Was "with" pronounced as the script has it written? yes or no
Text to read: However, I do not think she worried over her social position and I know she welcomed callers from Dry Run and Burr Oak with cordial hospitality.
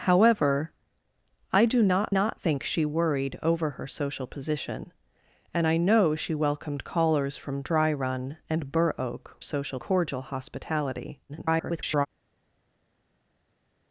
no